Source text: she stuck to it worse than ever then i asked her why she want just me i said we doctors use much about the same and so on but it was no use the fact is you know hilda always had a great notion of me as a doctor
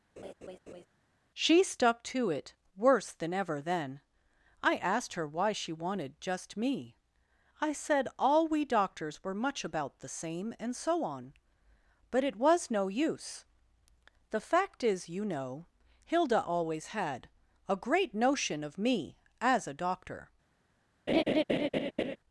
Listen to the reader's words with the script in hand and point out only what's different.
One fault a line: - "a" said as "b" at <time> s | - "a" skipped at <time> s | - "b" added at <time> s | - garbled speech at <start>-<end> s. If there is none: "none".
- "want" said as "wanted" at 5.7 s
- "all" added at 8.2 s
- "use" said as "were" at 9.2 s